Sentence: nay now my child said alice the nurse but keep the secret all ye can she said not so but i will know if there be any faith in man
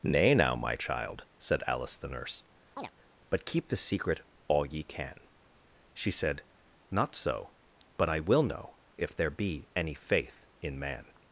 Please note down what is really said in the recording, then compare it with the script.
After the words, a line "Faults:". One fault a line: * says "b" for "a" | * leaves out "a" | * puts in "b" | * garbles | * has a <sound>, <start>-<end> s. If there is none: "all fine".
nay now my child said alice the nurse but keep the secret all ye can she said not so but i will know if there be any faith in man
Faults:
* has a chirp, 2.8-2.9 s